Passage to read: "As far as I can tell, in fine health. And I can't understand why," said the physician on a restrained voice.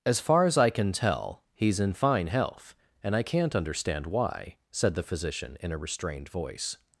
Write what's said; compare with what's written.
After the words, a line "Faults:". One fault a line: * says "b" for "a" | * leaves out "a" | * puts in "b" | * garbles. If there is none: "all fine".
"As far as I can tell, he's in fine health. And I can't understand why," said the physician in a restrained voice.
Faults:
* puts in "he's"
* says "in" for "on"